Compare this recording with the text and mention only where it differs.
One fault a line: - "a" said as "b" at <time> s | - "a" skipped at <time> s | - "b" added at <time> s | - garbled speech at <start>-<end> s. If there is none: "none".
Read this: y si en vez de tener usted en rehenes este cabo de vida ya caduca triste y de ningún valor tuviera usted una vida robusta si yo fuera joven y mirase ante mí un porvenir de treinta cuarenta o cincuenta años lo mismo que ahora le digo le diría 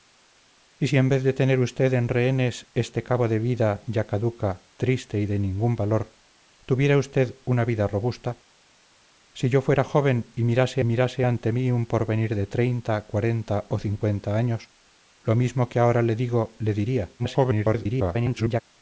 - "mirase" added at 10.8 s
- garbled speech at 17.2-18.6 s